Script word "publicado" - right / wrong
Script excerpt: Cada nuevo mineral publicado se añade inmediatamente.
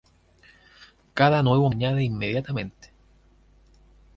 wrong